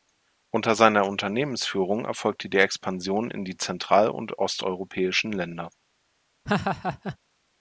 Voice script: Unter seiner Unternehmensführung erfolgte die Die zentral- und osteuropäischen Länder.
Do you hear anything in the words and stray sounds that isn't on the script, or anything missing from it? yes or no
yes